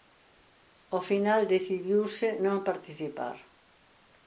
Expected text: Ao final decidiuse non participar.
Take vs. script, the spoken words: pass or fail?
pass